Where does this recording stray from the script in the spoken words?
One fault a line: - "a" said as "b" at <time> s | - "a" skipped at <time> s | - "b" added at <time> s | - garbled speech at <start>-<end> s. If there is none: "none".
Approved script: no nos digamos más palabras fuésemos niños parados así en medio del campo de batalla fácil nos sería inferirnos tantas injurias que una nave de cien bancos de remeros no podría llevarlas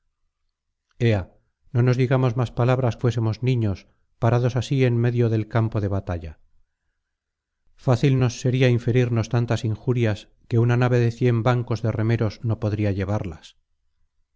none